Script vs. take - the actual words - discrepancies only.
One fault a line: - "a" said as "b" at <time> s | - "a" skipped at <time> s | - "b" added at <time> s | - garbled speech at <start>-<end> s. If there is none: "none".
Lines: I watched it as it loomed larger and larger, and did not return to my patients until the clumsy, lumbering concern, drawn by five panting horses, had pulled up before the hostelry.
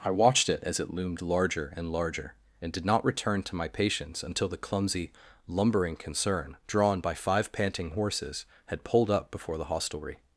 none